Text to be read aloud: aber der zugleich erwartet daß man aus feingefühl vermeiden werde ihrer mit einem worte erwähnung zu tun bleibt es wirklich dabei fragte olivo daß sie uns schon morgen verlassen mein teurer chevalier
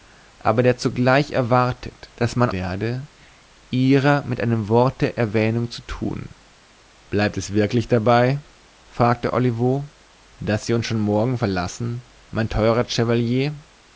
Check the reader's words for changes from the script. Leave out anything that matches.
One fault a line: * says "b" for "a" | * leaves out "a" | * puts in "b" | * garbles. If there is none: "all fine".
* leaves out "aus feingefühl vermeiden"